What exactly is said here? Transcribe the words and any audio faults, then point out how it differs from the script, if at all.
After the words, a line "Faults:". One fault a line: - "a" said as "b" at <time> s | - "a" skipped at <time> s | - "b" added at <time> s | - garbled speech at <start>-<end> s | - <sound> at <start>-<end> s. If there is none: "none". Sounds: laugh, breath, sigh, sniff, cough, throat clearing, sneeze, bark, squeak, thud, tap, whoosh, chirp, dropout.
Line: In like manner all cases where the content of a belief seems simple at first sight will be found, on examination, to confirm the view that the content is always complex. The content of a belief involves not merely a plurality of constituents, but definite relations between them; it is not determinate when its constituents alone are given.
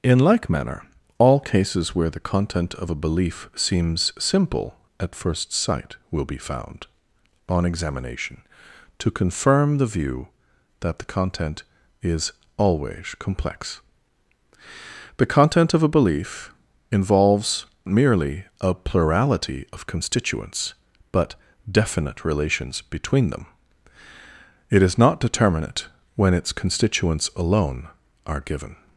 In like manner all cases where the content of a belief seems simple at first sight will be found, on examination, to confirm the view that the content is always complex. The content of a belief involves merely a plurality of constituents, but definite relations between them; it is not determinate when its constituents alone are given.
Faults:
- "not" skipped at 17.7 s